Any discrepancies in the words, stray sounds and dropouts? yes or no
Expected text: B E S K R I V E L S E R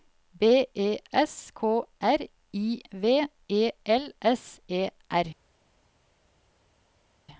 no